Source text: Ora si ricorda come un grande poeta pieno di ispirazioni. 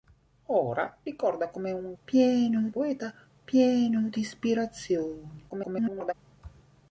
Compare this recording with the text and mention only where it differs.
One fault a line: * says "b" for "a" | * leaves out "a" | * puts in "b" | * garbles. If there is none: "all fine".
* leaves out "si"
* says "pieno" for "grande"
* garbles